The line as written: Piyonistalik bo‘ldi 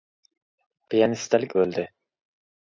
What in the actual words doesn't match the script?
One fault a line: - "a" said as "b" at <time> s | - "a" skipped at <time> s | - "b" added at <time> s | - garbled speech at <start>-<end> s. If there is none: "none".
none